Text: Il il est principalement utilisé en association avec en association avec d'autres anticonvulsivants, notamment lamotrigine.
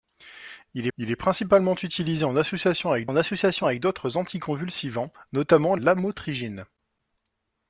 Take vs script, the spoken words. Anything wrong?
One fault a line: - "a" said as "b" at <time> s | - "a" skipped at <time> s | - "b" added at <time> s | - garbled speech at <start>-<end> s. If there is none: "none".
none